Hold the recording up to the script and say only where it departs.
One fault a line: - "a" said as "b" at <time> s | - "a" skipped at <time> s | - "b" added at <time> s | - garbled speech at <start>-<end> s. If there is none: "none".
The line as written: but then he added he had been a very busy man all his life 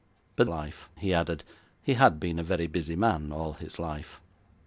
- "then" said as "life" at 0.5 s